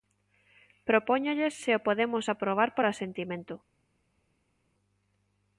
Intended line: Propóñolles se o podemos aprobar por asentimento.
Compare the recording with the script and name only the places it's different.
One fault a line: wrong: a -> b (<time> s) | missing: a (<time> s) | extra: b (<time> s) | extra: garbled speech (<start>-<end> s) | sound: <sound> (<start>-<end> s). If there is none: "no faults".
no faults